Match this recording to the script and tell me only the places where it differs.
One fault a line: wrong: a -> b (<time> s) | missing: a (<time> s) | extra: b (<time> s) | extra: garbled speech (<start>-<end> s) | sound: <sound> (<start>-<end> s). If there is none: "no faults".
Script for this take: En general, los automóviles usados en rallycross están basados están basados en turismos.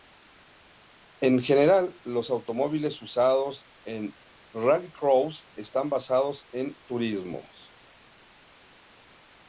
missing: están basados (6.5 s)